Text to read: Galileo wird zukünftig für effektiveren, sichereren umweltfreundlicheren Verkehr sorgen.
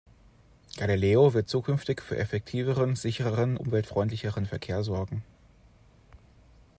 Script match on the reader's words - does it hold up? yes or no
yes